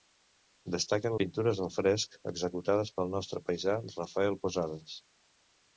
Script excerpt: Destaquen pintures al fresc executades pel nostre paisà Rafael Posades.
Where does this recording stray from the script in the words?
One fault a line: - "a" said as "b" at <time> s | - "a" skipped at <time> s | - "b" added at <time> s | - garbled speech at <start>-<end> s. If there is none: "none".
none